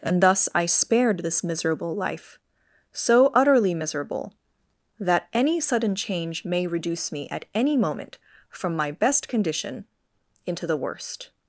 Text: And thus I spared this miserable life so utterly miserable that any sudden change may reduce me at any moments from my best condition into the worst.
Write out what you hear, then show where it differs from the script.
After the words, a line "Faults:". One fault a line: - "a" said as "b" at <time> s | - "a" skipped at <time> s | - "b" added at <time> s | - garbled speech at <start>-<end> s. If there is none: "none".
And thus I spared this miserable life so utterly miserable that any sudden change may reduce me at any moment from my best condition into the worst.
Faults:
- "moments" said as "moment" at 7.8 s